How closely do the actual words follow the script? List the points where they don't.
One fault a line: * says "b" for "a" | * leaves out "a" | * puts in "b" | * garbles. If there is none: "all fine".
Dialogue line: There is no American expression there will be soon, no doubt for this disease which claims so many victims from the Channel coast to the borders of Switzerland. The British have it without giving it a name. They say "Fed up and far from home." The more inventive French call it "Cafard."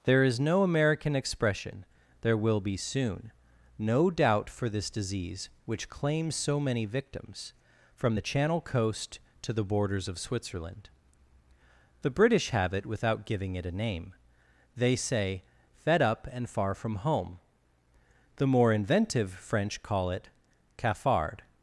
all fine